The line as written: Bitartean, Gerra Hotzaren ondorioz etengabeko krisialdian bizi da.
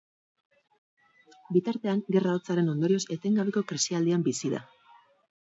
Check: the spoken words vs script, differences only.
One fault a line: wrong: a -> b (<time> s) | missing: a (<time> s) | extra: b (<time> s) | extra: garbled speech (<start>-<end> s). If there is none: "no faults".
no faults